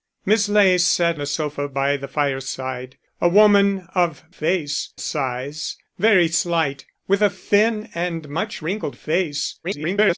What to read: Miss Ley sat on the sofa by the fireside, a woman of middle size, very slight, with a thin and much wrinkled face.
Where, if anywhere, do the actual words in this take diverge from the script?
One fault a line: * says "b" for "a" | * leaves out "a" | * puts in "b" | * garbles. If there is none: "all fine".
* leaves out "on"
* says "face" for "middle"
* garbles